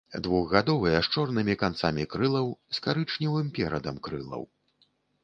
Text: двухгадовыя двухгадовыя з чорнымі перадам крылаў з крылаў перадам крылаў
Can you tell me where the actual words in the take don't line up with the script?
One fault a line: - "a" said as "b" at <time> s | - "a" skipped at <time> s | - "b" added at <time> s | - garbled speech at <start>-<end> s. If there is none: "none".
- "двухгадовыя" skipped at 1.0 s
- "перадам" said as "канцамі" at 1.6 s
- "крылаў" said as "карычневым" at 2.9 s